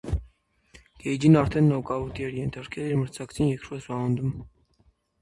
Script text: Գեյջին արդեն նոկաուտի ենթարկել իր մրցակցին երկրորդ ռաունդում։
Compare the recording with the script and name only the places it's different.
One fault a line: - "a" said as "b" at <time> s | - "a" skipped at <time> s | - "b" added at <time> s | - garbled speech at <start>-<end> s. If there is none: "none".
- "էր" added at 2.3 s